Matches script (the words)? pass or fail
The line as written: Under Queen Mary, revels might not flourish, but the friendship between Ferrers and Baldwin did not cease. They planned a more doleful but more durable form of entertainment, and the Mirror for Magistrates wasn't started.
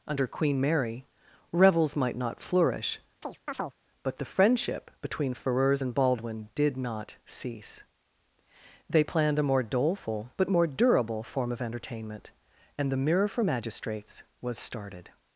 fail